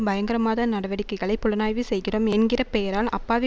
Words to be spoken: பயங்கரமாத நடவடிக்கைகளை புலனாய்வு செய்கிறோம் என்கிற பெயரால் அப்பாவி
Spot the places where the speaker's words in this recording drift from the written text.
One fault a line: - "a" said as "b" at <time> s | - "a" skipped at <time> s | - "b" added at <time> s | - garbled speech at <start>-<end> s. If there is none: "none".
none